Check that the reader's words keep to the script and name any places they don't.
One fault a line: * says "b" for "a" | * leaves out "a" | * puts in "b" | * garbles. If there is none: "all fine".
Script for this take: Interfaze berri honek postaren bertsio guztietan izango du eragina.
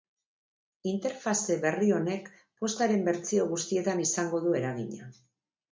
all fine